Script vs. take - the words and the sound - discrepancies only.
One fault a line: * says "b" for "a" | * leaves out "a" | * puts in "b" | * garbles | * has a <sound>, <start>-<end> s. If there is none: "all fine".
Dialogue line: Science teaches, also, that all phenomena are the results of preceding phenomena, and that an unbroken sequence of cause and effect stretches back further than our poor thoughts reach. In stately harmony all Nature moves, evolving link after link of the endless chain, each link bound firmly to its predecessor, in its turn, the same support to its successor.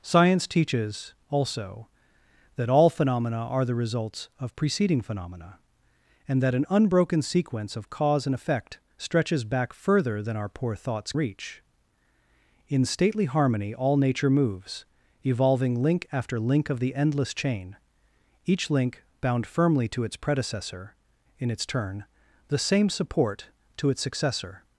all fine